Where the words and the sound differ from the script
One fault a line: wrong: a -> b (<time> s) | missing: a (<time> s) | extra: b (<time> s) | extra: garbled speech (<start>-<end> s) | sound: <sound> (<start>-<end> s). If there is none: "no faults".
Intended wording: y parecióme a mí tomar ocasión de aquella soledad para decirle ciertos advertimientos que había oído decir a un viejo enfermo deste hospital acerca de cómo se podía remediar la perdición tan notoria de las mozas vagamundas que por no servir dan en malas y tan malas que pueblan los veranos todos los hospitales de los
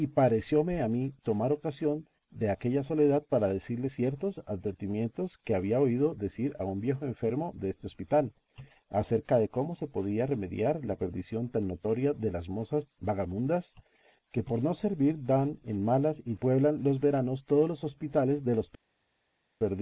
missing: tan malas que (16.4 s)